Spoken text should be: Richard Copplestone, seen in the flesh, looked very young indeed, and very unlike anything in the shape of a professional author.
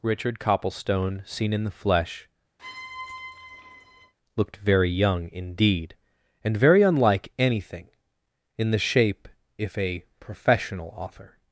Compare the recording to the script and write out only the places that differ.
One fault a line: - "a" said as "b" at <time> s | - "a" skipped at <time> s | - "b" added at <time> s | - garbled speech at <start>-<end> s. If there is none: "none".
- "of" said as "if" at 9.6 s